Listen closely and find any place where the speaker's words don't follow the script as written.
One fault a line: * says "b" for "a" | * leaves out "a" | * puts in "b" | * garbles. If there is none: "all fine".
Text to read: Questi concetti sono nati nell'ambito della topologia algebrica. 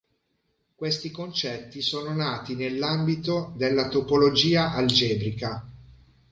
all fine